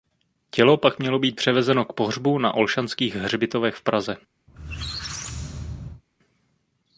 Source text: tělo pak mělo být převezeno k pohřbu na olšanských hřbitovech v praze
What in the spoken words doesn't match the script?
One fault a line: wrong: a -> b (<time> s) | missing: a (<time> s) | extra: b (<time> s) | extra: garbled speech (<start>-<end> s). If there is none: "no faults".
no faults